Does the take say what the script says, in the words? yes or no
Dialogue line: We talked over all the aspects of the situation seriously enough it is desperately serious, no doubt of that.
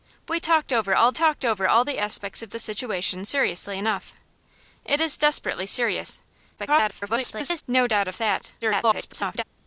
no